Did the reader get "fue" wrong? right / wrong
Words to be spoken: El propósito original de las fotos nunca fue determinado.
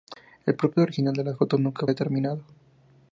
wrong